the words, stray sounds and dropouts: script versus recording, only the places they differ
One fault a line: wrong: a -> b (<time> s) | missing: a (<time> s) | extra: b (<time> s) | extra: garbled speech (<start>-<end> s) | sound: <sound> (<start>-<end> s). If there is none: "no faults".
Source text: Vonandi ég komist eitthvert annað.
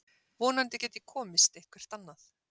extra: get (0.8 s)